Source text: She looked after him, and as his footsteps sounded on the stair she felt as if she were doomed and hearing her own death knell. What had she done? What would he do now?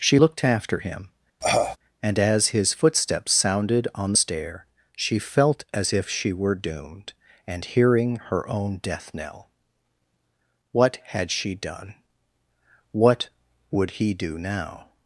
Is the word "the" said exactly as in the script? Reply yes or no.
no